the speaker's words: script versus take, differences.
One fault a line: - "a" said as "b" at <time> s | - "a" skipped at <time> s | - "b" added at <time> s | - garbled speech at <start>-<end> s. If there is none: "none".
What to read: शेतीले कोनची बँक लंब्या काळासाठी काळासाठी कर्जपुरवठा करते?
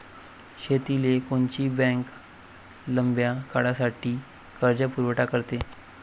- "काळासाठी" skipped at 4.1 s